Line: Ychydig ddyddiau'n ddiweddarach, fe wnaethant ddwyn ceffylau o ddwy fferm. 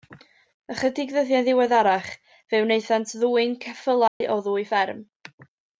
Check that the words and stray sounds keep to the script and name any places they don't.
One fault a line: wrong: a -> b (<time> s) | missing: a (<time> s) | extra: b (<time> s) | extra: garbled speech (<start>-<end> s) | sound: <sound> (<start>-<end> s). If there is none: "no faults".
sound: dropout (4.1-4.2 s)